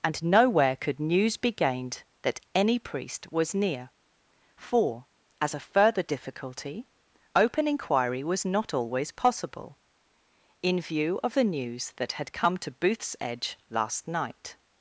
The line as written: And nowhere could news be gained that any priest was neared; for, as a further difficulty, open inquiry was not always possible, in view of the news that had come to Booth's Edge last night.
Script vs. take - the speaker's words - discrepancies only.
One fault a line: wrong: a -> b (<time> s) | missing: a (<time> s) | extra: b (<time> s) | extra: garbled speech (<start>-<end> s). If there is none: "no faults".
wrong: neared -> near (3.5 s)